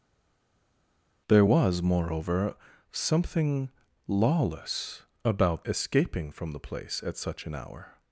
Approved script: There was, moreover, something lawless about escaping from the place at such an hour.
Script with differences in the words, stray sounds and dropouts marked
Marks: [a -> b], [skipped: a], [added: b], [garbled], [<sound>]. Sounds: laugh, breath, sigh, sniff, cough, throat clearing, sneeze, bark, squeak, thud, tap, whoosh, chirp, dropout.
There was, moreover, something lawless about escaping from the place at such an hour.